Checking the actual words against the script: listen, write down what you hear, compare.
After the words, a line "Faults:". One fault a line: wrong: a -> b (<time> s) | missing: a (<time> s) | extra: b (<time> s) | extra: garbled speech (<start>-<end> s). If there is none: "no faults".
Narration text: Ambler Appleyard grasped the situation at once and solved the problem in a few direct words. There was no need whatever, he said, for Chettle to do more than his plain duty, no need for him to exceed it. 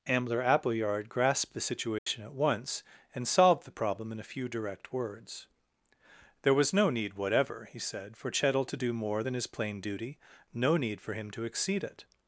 Ambler Appleyard grasped the situation at once and solved the problem in a few direct words. There was no need whatever, he said, for Chettle to do more than his plain duty, no need for him to exceed it.
Faults:
no faults